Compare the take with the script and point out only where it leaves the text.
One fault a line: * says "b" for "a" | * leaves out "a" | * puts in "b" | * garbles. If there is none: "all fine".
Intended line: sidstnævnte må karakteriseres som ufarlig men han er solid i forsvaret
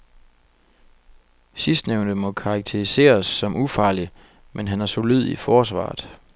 all fine